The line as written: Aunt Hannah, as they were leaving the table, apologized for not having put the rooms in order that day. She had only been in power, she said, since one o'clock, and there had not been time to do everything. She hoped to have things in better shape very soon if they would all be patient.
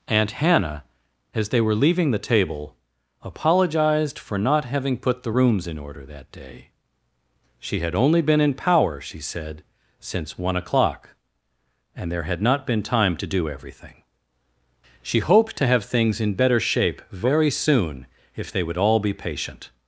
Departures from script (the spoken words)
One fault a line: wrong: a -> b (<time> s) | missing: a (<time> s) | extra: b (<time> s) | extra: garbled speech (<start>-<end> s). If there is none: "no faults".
no faults